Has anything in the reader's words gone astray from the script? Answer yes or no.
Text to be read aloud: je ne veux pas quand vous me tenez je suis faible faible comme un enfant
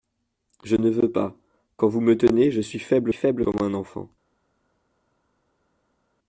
no